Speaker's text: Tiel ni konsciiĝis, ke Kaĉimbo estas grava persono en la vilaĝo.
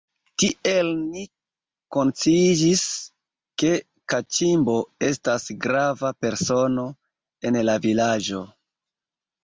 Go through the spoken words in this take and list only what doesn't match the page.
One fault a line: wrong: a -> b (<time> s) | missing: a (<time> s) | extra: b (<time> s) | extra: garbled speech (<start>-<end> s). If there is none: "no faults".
no faults